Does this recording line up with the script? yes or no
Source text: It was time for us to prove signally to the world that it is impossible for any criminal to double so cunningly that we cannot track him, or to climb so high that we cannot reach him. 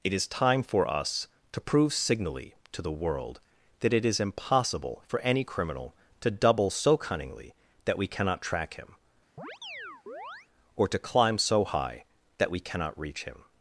no